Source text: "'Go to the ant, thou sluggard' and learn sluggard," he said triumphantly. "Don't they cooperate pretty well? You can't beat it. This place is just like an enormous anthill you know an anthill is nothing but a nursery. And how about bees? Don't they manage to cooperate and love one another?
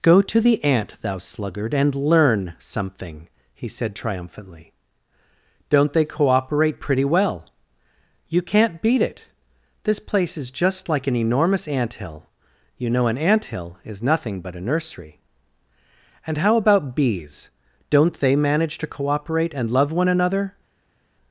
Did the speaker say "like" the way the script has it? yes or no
yes